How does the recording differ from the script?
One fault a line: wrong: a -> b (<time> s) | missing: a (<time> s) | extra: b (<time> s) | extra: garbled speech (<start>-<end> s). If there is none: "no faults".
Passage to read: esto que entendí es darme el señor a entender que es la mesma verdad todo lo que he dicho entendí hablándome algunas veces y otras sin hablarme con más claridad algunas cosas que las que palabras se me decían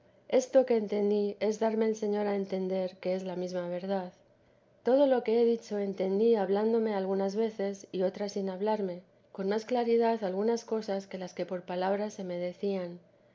extra: por (11.4 s)